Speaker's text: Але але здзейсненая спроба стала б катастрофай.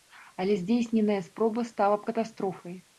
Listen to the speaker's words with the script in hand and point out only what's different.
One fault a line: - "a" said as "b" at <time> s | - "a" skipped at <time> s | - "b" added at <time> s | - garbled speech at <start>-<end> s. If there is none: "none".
- "але" skipped at 0.5 s